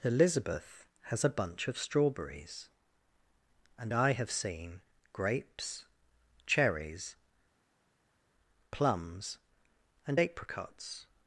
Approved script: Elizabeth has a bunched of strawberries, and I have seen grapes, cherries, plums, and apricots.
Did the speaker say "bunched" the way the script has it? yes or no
no